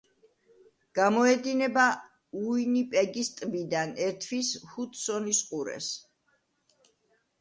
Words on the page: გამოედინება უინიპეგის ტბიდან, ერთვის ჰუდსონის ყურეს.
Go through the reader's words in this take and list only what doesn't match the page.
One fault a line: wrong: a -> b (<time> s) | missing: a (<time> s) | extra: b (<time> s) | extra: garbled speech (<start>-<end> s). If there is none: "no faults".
no faults